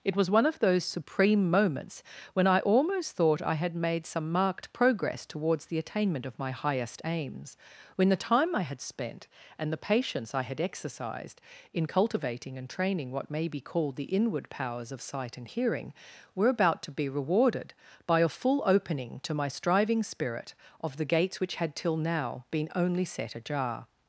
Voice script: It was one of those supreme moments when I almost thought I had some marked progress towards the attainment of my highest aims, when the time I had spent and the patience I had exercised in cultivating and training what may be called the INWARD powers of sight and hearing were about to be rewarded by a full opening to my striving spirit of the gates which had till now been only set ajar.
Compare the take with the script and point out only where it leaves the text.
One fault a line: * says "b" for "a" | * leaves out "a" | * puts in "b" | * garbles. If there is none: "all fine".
* puts in "made"